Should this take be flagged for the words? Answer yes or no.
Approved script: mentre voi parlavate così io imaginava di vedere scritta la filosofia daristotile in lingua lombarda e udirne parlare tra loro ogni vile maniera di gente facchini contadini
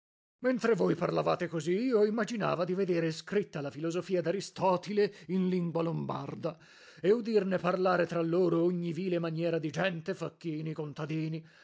no